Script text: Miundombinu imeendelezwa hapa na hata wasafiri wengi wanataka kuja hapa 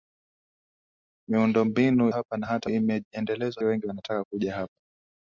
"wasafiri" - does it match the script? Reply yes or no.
no